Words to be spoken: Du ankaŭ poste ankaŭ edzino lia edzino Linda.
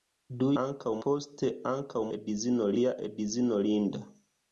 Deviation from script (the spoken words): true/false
false